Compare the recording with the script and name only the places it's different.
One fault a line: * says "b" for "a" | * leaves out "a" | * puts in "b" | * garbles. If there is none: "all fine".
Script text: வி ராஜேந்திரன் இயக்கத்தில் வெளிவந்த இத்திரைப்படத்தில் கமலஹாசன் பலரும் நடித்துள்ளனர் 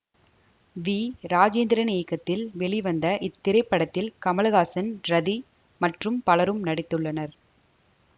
* puts in "ரதி மற்றும்"